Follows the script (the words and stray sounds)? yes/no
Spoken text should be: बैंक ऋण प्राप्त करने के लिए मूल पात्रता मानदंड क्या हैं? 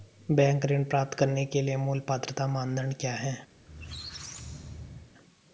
no